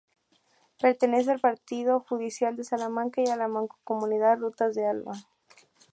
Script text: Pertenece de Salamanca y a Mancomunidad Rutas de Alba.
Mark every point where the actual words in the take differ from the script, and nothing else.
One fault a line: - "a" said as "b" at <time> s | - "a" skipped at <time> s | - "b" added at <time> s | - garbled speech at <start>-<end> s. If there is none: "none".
- "al partido judicial" added at 1.3 s
- "la" added at 3.3 s